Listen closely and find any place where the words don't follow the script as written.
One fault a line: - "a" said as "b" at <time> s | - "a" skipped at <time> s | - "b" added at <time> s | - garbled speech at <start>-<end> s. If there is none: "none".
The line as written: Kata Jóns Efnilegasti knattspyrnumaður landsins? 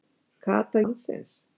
- "Jóns Efnilegasti knattspyrnumaður" skipped at 0.8 s